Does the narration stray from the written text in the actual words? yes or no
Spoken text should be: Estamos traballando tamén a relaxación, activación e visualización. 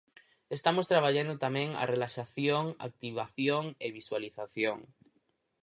no